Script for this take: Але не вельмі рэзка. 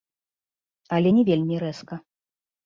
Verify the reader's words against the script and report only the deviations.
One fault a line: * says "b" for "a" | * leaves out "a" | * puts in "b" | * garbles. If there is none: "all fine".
all fine